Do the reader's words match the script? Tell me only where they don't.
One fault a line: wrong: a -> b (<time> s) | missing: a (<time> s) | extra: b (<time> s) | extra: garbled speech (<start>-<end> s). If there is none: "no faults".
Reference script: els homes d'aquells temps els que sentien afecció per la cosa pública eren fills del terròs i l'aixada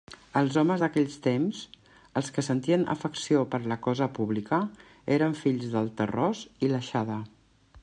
no faults